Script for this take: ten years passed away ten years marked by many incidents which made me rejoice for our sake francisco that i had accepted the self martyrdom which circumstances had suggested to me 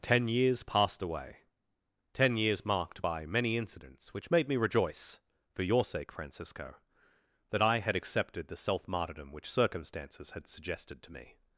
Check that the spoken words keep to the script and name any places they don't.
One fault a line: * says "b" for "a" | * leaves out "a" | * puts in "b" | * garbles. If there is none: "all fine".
* says "your" for "our"